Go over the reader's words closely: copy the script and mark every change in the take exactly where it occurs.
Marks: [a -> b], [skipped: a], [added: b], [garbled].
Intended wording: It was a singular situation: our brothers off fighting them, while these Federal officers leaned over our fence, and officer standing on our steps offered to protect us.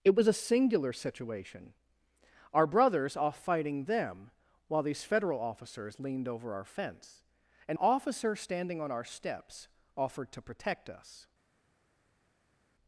It was a singular situation: our brothers off fighting them, while these Federal officers leaned over our fence, and officer standing on our steps offered to protect us.